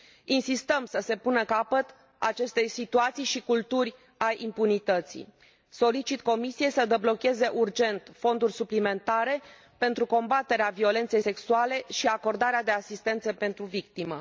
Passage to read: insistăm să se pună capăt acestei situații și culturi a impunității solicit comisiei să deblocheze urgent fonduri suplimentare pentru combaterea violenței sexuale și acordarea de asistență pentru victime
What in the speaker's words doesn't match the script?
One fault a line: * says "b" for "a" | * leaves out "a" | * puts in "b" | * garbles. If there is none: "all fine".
all fine